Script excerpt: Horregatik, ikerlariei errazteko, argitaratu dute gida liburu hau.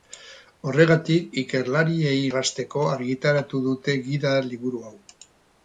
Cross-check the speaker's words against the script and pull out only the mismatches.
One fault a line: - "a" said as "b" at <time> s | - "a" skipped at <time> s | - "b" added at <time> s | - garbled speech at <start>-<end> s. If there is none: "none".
none